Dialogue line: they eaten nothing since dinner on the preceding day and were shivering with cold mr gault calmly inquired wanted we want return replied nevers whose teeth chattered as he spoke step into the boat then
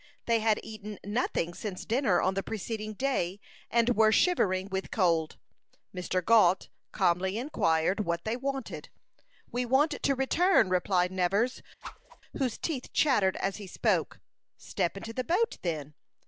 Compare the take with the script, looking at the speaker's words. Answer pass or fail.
fail